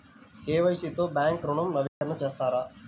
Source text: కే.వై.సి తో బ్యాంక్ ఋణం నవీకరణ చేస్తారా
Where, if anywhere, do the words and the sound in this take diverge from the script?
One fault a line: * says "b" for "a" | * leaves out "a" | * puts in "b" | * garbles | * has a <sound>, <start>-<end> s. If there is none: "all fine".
* has a dropout, 1.9-2.0 s